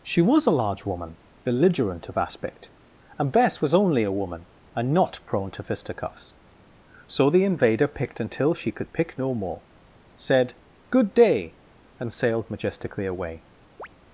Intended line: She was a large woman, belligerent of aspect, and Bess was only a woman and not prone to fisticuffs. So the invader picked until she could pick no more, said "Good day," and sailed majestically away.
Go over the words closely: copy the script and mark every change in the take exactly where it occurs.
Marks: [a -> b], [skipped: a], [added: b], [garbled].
She was a large woman, belligerent of aspect, and Bess was only a woman and not prone to fisticuffs. So the invader picked until she could pick no more, said "Good day," and sailed majestically away.